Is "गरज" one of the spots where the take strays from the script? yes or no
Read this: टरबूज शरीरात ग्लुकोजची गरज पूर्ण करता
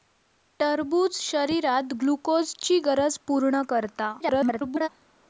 no